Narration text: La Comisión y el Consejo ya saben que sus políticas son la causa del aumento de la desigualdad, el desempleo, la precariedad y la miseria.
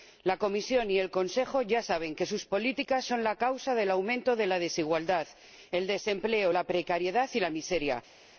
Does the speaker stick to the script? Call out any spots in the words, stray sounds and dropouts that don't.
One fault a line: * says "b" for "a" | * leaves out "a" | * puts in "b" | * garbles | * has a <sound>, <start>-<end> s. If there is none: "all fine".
all fine